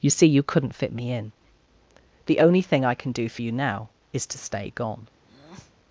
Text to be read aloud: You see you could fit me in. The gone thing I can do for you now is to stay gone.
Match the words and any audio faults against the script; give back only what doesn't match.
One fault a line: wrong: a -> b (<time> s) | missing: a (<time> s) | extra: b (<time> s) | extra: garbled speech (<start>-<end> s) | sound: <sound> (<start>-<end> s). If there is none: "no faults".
wrong: could -> couldn't (0.4 s)
wrong: gone -> only (2.4 s)
sound: breath (5.2-5.8 s)